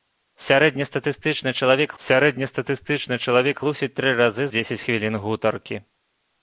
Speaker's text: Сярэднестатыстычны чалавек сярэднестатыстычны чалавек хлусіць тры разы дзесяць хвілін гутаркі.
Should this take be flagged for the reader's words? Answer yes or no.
no